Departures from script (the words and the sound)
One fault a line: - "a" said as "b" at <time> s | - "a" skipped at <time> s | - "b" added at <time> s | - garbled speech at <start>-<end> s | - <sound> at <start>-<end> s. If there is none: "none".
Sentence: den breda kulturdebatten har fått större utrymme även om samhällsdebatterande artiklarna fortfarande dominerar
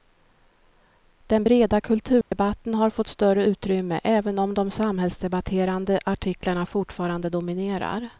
- dropout at 2.2-2.3 s
- "de" added at 4.5 s